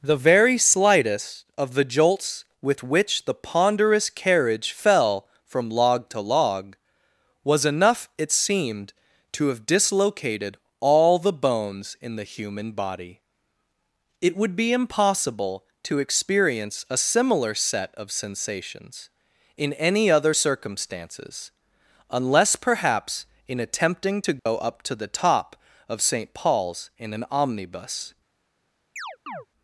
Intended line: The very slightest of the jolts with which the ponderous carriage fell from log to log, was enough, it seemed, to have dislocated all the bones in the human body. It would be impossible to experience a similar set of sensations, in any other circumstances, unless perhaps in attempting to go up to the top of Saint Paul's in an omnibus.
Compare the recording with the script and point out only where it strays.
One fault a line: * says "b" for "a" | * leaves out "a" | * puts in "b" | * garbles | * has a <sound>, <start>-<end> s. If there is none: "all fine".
* has a dropout, 24.4-24.5 s
* has a chirp, 29.0-29.5 s